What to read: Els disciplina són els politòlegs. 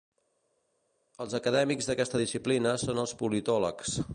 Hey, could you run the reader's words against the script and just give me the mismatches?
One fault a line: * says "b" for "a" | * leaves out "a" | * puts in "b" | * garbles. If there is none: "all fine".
* puts in "acadèmics d'aquesta"